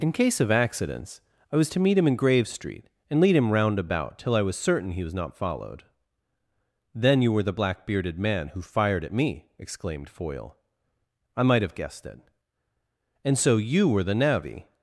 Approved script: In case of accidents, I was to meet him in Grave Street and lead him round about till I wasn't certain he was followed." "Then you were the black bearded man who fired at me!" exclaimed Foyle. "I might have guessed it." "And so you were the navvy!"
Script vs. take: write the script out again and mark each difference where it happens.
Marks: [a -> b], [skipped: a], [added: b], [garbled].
In case of accidents, I was to meet him in Grave Street and lead him round about till I [wasn't -> was] certain he was [added: not] followed." "Then you were the black bearded man who fired at me!" exclaimed Foyle. "I might have guessed it." "And so you were the navvy!"